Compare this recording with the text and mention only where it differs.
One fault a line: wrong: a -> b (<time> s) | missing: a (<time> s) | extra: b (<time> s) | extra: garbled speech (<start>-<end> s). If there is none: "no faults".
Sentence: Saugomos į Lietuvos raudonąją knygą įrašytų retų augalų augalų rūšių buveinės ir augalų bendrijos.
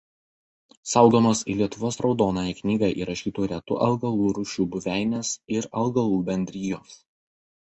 missing: augalų (4.3 s)